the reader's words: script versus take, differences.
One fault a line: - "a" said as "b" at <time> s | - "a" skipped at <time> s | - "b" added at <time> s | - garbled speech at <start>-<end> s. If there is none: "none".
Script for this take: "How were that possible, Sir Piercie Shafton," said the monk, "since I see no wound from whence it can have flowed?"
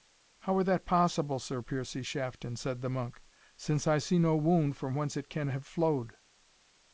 none